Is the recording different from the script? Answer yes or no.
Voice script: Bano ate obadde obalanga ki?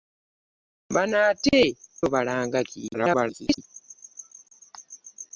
yes